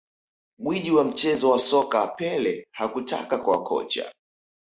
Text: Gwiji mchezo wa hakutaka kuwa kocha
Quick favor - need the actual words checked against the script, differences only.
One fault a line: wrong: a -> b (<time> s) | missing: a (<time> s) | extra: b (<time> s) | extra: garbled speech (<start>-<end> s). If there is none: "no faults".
extra: wa (0.9 s)
extra: soka Pele (1.6 s)